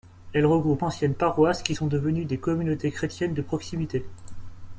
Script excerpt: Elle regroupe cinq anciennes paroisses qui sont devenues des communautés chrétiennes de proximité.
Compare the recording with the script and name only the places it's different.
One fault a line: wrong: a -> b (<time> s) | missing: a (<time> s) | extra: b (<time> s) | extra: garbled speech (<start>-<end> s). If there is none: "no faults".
missing: cinq (0.8 s)